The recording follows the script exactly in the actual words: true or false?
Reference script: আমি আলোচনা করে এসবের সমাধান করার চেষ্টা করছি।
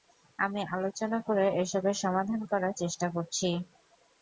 true